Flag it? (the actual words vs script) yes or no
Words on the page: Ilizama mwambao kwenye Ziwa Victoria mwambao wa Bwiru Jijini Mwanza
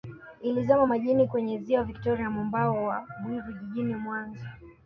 yes